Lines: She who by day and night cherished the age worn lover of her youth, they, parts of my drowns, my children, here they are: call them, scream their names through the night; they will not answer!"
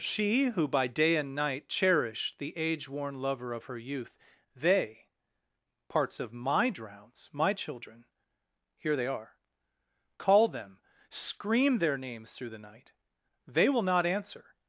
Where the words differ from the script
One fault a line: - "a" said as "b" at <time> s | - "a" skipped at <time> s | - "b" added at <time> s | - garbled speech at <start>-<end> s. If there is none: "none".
none